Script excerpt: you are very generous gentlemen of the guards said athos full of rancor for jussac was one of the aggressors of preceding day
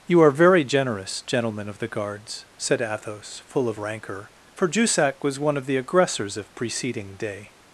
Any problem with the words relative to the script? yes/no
no